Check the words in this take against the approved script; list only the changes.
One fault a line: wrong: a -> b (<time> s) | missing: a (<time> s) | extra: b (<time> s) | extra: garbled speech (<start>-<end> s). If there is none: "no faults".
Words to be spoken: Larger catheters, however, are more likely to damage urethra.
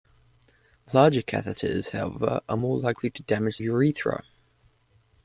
no faults